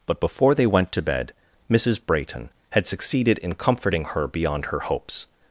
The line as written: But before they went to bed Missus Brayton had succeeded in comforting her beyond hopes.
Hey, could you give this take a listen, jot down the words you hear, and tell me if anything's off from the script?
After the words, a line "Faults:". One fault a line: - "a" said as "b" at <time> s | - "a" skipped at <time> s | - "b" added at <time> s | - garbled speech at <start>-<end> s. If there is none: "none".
But before they went to bed Missus Brayton had succeeded in comforting her beyond her hopes.
Faults:
- "her" added at 4.7 s